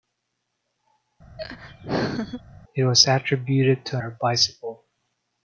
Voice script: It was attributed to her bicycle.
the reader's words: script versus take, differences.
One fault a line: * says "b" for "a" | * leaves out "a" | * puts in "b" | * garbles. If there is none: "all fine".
all fine